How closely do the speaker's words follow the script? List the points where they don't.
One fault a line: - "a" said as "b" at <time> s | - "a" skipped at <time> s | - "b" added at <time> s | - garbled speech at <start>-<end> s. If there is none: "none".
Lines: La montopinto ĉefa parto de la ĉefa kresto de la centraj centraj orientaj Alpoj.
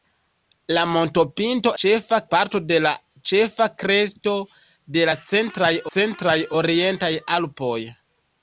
none